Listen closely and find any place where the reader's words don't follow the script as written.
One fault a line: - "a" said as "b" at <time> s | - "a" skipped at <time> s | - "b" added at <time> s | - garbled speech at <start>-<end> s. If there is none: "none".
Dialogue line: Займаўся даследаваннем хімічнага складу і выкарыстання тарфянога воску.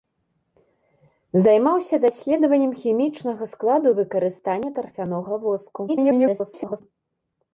- garbled speech at 5.9-6.8 s